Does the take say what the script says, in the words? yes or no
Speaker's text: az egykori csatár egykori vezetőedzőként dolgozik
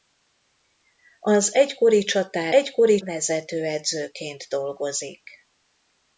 yes